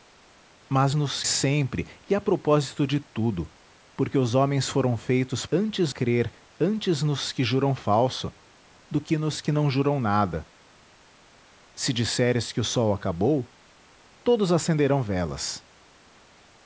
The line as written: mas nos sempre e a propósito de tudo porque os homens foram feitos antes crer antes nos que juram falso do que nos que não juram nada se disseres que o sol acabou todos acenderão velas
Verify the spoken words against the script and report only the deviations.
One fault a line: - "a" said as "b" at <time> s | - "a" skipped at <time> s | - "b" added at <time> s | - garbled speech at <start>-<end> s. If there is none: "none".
none